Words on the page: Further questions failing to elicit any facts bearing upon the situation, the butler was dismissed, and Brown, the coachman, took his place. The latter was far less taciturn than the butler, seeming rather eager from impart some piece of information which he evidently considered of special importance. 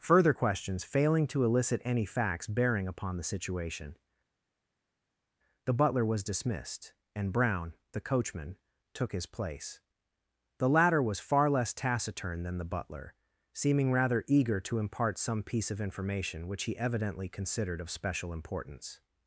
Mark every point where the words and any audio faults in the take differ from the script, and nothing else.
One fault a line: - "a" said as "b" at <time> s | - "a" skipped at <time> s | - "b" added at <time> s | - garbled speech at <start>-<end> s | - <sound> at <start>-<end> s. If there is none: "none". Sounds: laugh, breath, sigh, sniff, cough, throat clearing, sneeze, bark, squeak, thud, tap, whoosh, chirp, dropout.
- "from" said as "to" at 14.6 s